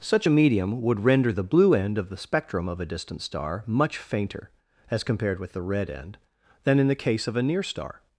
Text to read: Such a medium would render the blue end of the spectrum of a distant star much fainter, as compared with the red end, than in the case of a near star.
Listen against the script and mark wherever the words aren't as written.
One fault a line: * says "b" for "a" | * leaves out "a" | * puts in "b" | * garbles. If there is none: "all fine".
all fine